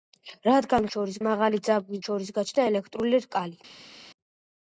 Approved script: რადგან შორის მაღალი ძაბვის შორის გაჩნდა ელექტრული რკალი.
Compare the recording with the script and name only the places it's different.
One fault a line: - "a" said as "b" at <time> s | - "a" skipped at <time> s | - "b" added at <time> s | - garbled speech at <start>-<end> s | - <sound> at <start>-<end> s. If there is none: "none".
none